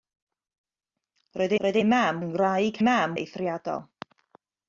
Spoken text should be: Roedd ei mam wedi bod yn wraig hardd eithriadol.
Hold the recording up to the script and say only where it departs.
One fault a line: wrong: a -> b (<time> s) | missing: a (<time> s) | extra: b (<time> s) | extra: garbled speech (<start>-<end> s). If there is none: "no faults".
extra: roedd (1.7 s)
missing: wedi bod (2.2 s)
wrong: hardd -> mam (2.8 s)